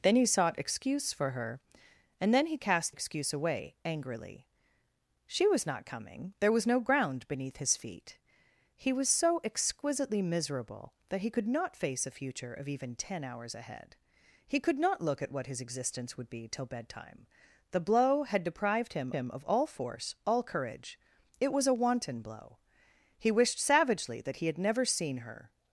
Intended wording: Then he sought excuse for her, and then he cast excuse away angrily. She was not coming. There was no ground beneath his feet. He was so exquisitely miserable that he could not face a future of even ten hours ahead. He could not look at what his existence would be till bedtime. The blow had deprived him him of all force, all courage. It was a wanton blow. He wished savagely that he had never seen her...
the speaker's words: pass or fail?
pass